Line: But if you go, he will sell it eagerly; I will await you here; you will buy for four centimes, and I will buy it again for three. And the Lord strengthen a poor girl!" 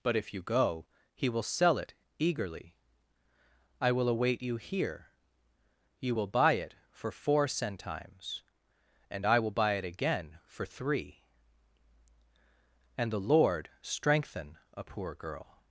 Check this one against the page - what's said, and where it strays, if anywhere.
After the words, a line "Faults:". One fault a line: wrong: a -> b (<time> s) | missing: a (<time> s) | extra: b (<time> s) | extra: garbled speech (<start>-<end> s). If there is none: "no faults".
But if you go, he will sell it eagerly; I will await you here; you will buy it for four centimes, and I will buy it again for three. And the Lord strengthen a poor girl!"
Faults:
extra: it (6.5 s)